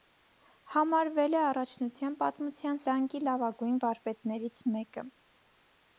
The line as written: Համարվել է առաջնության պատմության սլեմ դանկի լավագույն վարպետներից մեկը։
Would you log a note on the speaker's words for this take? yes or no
yes